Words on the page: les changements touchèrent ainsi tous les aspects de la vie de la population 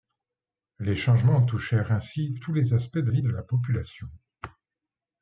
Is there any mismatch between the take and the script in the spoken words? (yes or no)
yes